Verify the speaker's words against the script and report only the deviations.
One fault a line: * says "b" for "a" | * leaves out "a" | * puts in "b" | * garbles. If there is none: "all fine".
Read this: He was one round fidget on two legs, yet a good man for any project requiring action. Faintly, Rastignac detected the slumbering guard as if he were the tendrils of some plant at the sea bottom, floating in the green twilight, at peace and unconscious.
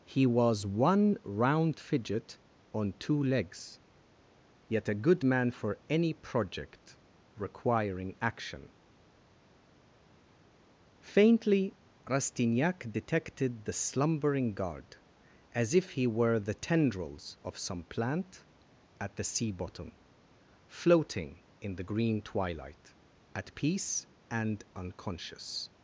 all fine